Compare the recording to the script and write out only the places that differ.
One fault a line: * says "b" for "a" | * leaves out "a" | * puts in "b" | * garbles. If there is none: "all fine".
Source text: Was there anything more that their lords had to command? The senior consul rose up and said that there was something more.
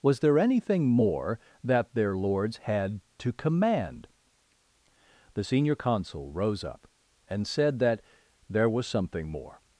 all fine